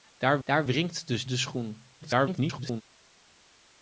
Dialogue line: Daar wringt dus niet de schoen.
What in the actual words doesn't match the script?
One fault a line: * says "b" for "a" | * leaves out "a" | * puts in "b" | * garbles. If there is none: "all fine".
* puts in "daar"
* leaves out "niet"
* garbles